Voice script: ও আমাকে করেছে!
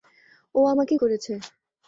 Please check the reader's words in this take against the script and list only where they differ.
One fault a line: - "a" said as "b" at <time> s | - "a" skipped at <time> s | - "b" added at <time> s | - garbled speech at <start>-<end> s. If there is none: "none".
none